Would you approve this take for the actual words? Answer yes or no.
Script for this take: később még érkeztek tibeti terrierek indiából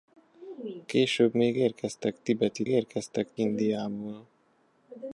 no